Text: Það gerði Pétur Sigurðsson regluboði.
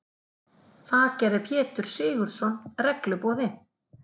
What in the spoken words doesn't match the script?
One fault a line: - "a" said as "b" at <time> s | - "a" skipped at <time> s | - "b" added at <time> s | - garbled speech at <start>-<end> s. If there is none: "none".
none